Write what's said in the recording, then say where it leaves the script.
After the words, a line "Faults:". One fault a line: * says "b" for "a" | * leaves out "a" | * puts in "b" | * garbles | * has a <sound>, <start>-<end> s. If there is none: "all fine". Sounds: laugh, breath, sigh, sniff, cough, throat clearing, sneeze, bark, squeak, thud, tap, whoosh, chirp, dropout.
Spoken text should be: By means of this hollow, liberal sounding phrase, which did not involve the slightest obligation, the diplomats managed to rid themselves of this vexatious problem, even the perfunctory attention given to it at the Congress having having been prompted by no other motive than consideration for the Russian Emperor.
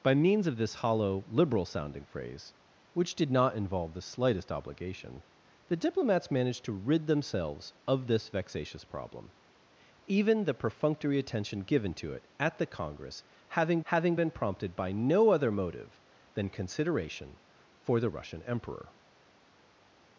By means of this hollow, liberal sounding phrase, which did not involve the slightest obligation, the diplomats managed to rid themselves of this vexatious problem, even the perfunctory attention given to it at the Congress having having been prompted by no other motive than consideration for the Russian Emperor.
Faults:
all fine